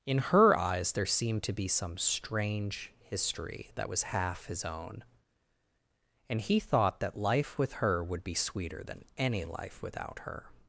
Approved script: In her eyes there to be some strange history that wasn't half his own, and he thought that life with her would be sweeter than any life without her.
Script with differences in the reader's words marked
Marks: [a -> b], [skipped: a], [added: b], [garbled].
In her eyes there [added: seemed] to be some strange history that [wasn't -> was] half his own, and he thought that life with her would be sweeter than any life without her.